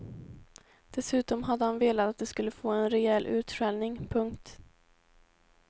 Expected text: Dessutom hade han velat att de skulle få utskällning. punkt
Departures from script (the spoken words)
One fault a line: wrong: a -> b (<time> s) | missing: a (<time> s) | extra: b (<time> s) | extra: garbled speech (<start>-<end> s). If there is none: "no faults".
extra: en rejäl (2.7 s)